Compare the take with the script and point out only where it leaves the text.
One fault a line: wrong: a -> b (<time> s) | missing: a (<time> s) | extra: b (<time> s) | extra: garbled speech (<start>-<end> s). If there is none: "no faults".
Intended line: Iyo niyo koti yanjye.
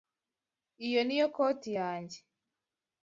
no faults